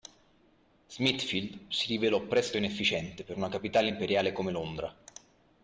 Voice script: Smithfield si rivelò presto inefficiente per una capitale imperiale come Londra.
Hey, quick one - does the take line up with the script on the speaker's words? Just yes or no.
yes